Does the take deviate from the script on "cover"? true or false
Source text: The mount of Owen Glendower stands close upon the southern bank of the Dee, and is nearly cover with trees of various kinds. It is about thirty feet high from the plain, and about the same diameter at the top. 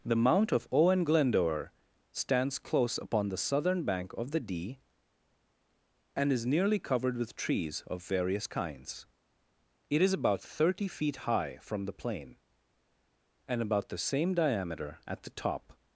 true